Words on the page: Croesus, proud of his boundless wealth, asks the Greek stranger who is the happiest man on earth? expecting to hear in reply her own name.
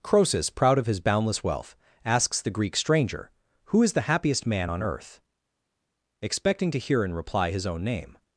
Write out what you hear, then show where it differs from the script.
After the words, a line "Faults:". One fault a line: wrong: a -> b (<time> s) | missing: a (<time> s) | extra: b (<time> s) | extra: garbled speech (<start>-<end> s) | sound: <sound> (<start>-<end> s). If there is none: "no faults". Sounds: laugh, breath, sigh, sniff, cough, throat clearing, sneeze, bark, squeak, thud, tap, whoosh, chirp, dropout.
Croesus, proud of his boundless wealth, asks the Greek stranger who is the happiest man on earth? expecting to hear in reply his own name.
Faults:
wrong: her -> his (7.5 s)